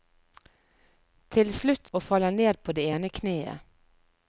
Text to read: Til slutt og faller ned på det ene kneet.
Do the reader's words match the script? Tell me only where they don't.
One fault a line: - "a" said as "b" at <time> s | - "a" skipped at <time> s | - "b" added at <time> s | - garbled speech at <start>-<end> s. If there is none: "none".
none